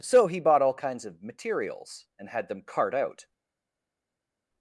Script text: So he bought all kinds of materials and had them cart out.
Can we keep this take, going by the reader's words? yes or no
yes